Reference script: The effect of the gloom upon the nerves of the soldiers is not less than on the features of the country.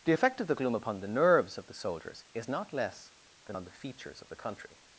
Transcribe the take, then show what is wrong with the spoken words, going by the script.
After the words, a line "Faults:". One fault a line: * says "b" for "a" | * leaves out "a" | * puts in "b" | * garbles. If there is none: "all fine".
The effect of the gloom upon the nerves of the soldiers is not less than on the features of the country.
Faults:
all fine